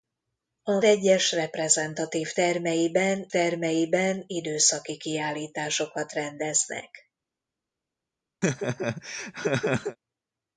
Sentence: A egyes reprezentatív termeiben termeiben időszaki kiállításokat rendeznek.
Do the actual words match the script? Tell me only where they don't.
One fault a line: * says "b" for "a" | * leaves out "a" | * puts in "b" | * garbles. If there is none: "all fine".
all fine